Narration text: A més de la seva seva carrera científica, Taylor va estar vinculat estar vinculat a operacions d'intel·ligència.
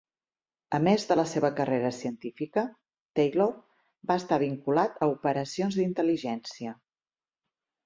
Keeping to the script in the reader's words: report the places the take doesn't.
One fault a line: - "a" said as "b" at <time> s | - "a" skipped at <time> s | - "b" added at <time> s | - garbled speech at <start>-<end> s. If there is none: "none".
- "seva" skipped at 1.5 s
- "estar vinculat" skipped at 5.0 s